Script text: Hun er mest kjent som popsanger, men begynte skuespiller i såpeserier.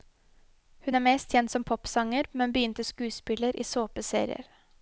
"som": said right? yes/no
yes